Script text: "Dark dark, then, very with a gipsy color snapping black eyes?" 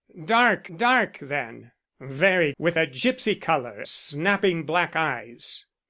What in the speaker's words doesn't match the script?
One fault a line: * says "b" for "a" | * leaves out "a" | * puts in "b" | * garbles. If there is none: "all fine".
all fine